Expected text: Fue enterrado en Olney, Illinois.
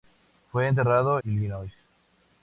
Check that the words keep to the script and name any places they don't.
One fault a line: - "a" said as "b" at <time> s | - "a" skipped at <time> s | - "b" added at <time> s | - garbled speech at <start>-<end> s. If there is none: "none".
- "en Olney" skipped at 1.2 s